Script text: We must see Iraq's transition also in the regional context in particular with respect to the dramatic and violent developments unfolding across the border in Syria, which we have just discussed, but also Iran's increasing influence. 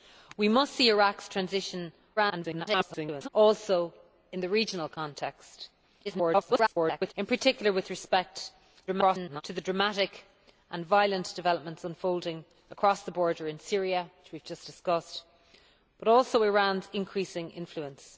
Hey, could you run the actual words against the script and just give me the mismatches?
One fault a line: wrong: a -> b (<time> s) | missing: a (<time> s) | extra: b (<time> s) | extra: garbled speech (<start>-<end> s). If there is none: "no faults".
extra: garbled speech (2.2-3.3 s)
extra: garbled speech (6.0-7.1 s)
extra: garbled speech (8.9-9.4 s)